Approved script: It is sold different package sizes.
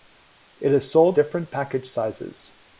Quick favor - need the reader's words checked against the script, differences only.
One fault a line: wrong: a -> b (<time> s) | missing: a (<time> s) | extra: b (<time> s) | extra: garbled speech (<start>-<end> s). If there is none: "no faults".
no faults